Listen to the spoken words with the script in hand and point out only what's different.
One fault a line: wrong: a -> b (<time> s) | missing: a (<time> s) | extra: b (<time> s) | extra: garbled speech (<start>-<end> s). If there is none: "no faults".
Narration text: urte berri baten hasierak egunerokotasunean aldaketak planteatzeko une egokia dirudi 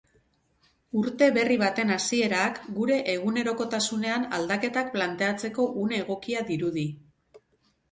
extra: gure (2.8 s)